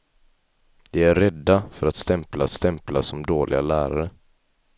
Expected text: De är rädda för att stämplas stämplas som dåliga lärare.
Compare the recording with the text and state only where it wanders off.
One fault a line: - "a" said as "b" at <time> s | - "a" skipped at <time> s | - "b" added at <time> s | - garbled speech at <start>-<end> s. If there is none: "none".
none